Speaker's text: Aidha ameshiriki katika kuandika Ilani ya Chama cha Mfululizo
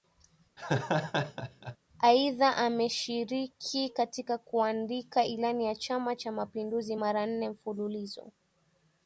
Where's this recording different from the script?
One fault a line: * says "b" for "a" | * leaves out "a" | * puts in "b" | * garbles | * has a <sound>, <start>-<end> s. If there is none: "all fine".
* has a laugh, 0.6-1.8 s
* puts in "Mapinduzi mara nne"